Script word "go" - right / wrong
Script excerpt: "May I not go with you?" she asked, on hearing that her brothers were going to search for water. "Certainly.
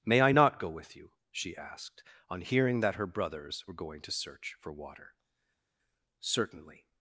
right